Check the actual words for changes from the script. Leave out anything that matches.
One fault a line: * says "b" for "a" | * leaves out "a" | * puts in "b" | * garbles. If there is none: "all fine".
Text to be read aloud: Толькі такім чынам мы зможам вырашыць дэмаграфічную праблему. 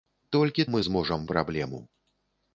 * leaves out "такім чынам"
* leaves out "вырашыць дэмаграфічную"